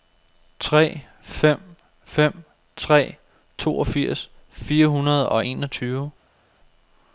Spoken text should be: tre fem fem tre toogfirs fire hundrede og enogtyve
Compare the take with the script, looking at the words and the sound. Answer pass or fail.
pass